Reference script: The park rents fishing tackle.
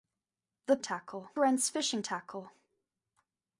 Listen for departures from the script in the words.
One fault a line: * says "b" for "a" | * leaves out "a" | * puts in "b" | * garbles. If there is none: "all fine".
* says "tackle" for "park"